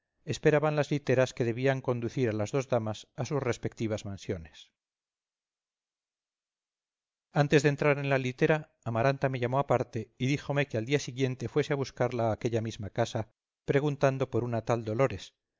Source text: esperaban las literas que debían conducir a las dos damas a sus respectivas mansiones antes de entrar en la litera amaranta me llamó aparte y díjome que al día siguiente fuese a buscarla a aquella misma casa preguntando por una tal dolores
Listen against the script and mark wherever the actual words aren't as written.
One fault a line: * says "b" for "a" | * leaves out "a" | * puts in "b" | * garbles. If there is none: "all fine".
all fine